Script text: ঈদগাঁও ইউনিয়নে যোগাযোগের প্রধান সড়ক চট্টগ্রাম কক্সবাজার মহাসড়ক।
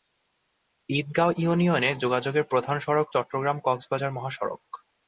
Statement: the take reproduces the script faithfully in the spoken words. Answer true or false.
true